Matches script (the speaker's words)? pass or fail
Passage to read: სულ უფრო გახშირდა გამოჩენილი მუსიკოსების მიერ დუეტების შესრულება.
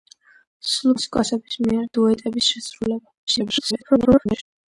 fail